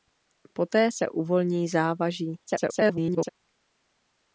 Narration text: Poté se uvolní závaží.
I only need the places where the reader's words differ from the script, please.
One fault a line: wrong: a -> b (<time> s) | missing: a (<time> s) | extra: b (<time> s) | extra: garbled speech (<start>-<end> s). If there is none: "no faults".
extra: garbled speech (2.5-3.3 s)